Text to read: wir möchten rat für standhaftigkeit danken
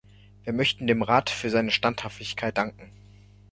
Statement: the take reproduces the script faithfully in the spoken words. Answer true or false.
false